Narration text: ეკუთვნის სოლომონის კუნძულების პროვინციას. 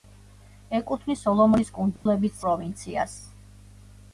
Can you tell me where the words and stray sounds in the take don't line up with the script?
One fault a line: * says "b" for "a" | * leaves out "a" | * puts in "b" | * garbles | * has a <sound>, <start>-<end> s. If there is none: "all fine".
* has a dropout, 2.0-2.1 s